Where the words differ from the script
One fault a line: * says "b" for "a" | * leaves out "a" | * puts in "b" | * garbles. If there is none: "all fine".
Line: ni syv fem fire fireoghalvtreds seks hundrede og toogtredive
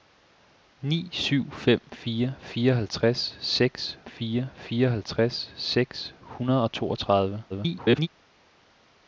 * puts in "fire fireoghalvtreds seks"
* garbles